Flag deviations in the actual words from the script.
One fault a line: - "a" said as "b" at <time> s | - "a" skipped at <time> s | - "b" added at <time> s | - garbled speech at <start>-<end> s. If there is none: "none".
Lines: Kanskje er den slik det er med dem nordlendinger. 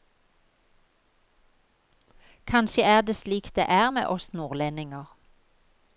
- "den" said as "det" at 3.0 s
- "dem" said as "oss" at 4.1 s